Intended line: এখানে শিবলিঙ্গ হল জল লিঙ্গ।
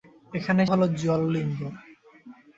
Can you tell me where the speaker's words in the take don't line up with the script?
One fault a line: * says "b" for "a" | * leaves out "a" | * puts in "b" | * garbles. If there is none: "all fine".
* leaves out "শিবলিঙ্গ"